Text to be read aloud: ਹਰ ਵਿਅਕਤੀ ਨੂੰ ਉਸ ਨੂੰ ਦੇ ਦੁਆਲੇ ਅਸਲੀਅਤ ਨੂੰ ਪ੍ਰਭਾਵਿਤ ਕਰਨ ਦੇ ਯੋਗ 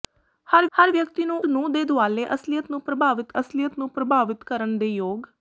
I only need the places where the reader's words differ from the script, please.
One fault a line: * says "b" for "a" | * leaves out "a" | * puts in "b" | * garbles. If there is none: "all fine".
* puts in "ਹਰ"
* leaves out "ਉਸ"
* puts in "ਅਸਲੀਅਤ ਨੂੰ ਪ੍ਰਭਾਵਿਤ"